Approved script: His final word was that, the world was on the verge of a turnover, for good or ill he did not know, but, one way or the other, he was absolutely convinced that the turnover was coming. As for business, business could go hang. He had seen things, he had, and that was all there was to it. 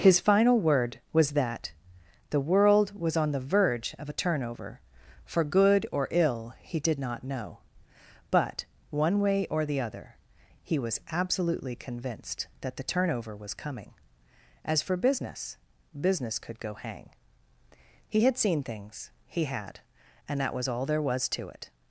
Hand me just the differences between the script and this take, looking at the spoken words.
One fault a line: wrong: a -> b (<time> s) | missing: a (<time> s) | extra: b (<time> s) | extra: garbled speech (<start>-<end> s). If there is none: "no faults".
no faults